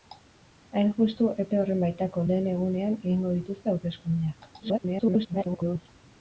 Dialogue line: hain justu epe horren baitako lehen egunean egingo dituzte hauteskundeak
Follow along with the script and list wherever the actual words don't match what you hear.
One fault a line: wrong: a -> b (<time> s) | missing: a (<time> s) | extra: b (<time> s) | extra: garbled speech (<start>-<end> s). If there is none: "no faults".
extra: garbled speech (4.6-5.9 s)